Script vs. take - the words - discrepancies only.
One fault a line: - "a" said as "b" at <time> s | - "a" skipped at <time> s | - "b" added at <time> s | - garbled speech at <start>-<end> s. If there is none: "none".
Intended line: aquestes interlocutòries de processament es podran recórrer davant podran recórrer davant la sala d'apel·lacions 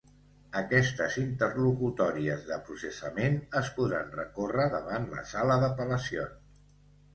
- "podran recórrer davant" skipped at 5.1 s